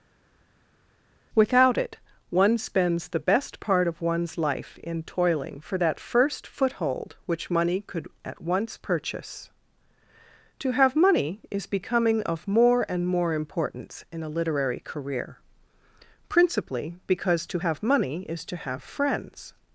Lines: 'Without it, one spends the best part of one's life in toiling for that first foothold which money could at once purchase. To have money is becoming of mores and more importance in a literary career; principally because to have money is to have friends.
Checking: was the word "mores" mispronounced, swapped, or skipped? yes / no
yes